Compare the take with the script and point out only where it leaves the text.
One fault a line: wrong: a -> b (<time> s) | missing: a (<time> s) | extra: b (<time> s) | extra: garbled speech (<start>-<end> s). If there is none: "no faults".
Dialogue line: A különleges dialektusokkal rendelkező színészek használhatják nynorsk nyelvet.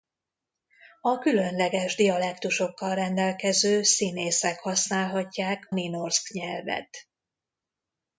no faults